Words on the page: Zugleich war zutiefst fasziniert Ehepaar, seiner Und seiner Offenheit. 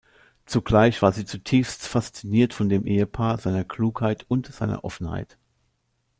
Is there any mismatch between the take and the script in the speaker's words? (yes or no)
yes